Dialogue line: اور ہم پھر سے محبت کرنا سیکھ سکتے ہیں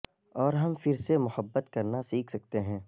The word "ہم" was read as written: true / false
true